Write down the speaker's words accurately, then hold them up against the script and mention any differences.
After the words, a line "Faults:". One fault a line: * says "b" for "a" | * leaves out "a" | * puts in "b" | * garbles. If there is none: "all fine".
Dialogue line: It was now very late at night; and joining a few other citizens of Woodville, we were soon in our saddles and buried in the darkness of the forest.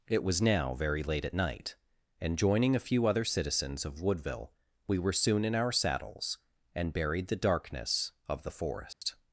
It was now very late at night; and joining a few other citizens of Woodville, we were soon in our saddles and buried the darkness of the forest.
Faults:
* leaves out "in"